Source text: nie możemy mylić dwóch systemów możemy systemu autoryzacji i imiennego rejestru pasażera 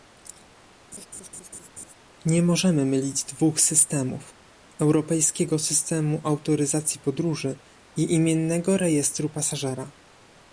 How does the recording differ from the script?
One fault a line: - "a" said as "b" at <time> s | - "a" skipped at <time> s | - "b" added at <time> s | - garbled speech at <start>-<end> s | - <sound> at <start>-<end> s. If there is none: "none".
- laugh at 0.9-1.9 s
- "możemy" said as "europejskiego" at 4.8 s
- "podróży" added at 7.0 s